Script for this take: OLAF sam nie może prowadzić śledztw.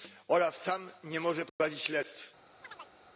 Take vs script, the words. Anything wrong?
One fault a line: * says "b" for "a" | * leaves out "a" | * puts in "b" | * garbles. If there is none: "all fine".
all fine